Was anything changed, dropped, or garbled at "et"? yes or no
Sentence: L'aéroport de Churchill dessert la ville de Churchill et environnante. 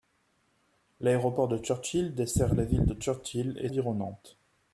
no